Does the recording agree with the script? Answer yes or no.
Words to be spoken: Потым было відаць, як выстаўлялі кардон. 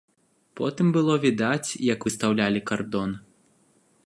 yes